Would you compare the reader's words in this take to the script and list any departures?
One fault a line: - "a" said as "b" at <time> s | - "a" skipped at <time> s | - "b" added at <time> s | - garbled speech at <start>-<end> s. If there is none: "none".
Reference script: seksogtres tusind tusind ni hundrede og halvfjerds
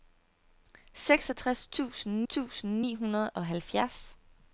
none